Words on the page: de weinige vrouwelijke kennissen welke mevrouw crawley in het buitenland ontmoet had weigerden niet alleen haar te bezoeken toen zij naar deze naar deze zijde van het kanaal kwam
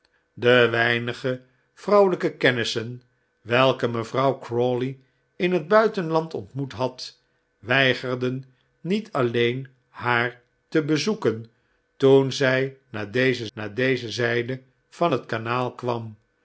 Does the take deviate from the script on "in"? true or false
false